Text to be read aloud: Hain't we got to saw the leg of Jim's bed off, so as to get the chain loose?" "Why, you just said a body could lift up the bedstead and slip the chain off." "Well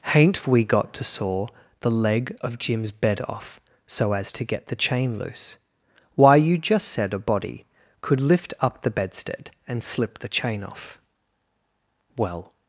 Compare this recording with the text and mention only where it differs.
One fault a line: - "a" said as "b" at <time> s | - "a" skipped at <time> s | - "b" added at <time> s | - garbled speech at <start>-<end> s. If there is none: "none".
none